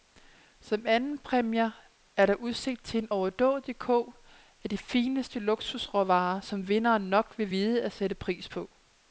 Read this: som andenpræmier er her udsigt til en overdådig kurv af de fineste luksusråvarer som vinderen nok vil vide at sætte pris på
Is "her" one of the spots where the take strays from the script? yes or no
yes